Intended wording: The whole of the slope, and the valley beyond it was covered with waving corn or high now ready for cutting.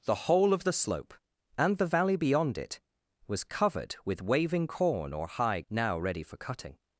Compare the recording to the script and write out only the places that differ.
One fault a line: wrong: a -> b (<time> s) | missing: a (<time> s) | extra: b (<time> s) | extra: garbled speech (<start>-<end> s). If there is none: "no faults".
no faults